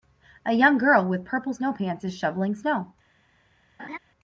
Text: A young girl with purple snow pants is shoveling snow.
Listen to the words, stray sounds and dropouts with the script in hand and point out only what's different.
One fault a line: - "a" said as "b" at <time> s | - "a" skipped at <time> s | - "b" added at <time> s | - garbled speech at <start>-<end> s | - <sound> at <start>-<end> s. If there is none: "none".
- laugh at 3.8-4.0 s